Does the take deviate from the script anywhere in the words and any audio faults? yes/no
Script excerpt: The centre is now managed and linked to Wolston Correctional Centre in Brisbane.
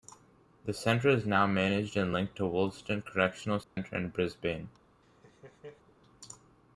yes